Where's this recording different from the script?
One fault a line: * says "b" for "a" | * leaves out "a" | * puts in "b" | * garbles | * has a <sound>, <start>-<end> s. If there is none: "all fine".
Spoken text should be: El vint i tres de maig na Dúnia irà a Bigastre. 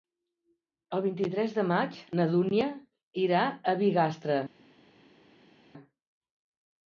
all fine